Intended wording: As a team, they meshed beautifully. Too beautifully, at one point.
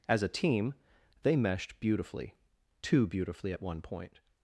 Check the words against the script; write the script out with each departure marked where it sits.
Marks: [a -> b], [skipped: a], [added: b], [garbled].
As a team, they meshed beautifully. Too beautifully, at one point.